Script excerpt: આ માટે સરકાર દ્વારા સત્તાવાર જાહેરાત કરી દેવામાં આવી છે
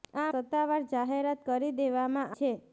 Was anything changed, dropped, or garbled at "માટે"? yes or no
yes